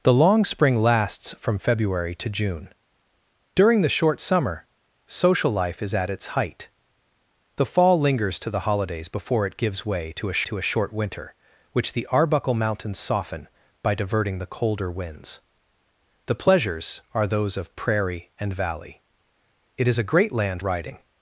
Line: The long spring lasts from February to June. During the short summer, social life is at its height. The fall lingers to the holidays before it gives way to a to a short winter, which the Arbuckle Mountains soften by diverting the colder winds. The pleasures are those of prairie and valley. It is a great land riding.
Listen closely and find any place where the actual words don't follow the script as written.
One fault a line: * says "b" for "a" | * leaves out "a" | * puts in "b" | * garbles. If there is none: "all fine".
all fine